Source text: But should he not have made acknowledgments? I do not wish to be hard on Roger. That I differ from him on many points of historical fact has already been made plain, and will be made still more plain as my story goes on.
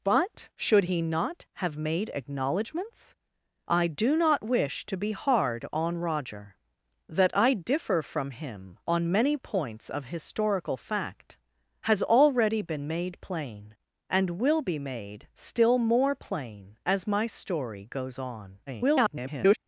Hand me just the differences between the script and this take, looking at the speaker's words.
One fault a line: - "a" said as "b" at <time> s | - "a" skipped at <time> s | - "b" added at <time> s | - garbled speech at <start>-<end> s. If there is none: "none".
- garbled speech at 18.7-19.6 s